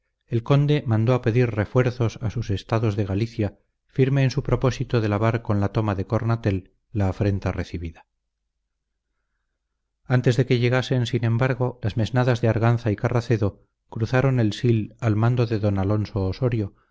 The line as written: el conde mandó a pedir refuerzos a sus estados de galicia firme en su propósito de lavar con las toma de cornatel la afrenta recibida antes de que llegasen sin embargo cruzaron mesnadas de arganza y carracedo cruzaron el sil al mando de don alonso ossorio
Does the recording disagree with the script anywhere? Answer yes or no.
yes